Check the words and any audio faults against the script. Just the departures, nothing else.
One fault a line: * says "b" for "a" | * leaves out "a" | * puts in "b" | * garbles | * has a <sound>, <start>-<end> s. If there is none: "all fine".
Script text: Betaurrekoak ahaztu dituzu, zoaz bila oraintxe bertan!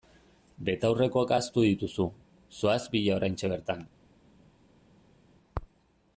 all fine